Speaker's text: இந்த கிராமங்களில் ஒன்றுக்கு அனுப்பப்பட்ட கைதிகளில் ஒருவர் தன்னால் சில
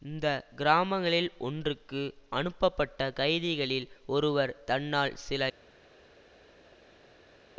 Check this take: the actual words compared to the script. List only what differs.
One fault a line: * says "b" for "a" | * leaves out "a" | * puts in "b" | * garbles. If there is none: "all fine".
all fine